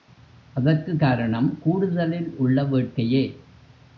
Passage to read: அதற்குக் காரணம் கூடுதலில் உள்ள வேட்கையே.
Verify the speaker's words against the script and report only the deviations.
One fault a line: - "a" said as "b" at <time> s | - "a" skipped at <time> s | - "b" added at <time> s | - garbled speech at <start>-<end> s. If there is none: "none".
none